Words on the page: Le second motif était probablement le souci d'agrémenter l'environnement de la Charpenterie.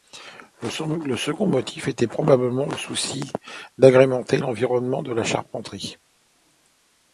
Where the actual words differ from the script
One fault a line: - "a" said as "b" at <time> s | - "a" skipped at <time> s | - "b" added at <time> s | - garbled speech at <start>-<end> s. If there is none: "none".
none